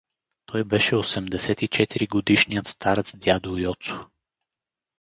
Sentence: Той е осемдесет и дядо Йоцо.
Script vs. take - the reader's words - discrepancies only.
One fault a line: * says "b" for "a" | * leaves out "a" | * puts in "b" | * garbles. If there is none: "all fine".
* says "беше" for "е"
* puts in "четири годишният старец"